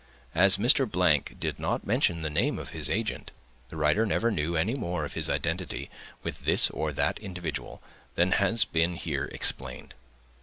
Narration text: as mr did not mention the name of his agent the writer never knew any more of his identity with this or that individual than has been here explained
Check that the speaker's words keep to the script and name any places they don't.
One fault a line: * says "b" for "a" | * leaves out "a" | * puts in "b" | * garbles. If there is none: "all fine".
all fine